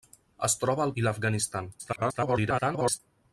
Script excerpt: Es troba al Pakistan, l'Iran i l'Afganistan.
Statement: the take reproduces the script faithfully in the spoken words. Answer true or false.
false